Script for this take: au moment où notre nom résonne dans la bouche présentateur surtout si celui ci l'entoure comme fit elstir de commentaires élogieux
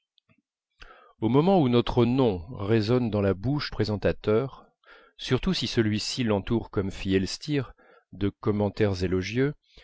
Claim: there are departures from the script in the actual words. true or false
false